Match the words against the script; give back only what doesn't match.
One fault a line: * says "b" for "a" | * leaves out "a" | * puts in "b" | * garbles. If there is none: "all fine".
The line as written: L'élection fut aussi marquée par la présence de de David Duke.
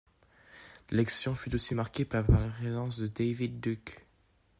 * leaves out "de"